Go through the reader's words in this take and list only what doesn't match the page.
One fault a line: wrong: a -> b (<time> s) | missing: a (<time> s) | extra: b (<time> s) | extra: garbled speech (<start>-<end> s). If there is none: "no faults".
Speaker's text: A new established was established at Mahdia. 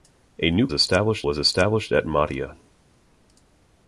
no faults